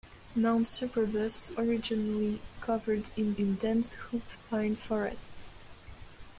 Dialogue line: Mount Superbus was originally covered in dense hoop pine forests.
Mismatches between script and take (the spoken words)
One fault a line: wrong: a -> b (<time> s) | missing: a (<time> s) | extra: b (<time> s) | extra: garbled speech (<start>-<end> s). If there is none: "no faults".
missing: was (1.6 s)
extra: in (3.4 s)